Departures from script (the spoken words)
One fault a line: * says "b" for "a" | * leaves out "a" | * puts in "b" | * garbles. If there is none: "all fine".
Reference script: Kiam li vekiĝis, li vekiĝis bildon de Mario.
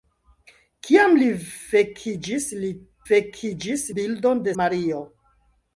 all fine